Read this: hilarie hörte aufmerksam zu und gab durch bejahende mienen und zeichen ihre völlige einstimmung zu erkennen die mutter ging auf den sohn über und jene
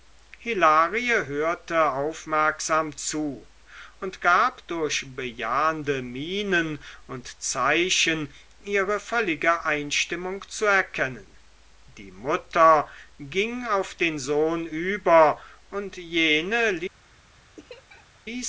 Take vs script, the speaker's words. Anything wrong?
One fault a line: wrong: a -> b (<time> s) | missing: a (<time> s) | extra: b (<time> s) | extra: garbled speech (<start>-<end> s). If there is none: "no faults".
no faults